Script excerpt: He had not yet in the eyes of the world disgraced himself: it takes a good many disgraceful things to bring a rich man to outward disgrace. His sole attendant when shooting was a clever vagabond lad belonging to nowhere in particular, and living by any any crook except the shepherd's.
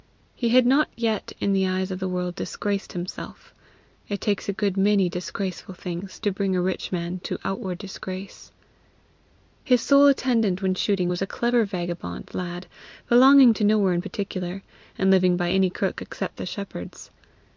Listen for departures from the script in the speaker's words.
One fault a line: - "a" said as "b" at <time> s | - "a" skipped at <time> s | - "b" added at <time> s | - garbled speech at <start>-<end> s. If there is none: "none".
- "any" skipped at 15.7 s